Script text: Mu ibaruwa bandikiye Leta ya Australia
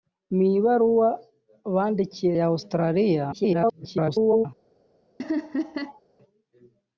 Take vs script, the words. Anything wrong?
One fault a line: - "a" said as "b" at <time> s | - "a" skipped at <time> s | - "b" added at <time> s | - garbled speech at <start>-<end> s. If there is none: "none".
- "Leta" skipped at 2.3 s
- garbled speech at 3.3-4.5 s